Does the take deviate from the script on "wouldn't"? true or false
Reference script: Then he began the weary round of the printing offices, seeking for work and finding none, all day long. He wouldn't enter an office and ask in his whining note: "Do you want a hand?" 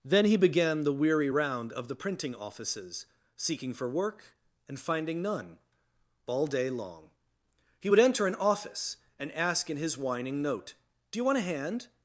true